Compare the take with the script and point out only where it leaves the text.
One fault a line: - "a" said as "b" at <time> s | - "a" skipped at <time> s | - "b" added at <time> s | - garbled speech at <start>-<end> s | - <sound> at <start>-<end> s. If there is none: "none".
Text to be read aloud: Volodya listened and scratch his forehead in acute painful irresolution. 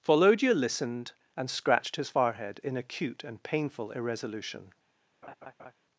- "scratch" said as "scratched" at 1.5 s
- "and" added at 3.2 s
- laugh at 5.2-5.7 s